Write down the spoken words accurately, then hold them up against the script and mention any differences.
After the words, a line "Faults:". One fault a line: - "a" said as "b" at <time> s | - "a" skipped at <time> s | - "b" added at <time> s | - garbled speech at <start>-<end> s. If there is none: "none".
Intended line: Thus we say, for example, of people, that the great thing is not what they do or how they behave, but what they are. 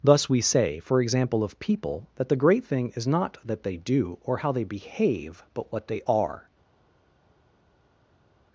Thus we say, for example, of people, that the great thing is not that they do or how they behave, but what they are.
Faults:
- "what" said as "that" at 3.5 s